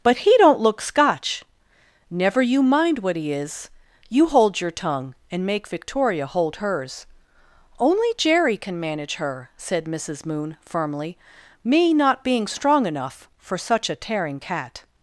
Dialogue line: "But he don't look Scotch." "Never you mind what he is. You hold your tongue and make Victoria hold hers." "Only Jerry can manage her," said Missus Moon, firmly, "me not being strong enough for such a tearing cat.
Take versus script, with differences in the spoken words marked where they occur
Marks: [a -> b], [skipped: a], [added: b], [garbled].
"But he don't look Scotch." "Never you mind what he is. You hold your tongue and make Victoria hold hers." "Only Jerry can manage her," said Missus Moon, firmly, "me not being strong enough for such a tearing cat.